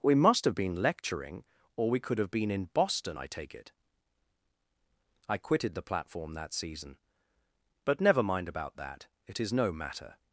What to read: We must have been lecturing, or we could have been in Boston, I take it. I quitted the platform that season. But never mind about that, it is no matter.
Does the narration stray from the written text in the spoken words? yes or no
no